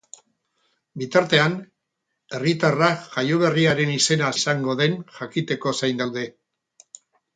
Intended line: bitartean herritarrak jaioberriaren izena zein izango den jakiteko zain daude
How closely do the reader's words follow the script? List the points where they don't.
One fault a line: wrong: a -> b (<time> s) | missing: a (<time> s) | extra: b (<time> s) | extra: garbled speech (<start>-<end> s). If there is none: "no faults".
missing: zein (4.3 s)